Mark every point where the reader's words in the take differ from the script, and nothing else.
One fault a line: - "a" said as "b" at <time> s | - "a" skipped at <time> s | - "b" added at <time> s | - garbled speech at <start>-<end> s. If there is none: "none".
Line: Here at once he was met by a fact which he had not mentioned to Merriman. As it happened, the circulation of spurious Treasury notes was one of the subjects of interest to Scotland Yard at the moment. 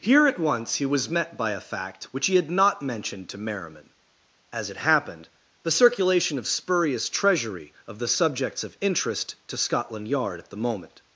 - "notes was one" skipped at 7.7 s